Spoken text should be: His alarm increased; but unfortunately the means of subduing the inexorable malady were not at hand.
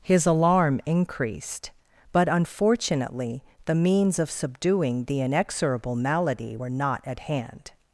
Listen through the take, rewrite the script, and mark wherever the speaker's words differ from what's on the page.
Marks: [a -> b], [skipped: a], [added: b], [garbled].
His alarm increased; but unfortunately the means of subduing the inexorable malady were not at hand.